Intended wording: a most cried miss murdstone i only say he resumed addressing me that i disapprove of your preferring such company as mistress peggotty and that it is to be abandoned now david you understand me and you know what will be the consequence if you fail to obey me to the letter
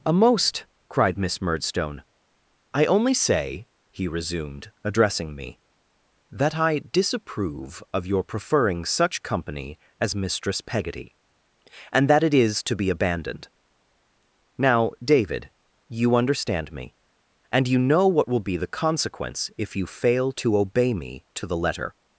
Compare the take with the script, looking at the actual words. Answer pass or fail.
pass